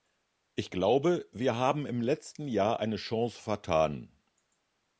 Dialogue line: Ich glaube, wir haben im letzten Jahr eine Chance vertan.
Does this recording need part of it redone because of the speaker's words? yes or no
no